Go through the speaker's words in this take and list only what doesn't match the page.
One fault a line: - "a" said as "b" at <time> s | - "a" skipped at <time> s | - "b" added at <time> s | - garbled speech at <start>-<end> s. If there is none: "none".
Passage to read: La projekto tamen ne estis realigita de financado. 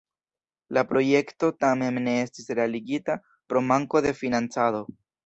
- "pro manko" added at 3.5 s